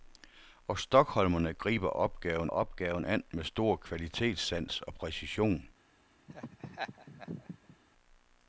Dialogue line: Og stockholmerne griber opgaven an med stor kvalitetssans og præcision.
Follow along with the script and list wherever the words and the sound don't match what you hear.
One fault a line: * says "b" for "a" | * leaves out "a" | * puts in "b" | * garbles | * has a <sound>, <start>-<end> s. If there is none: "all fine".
* puts in "opgaven"
* has a laugh, 6.3-7.8 s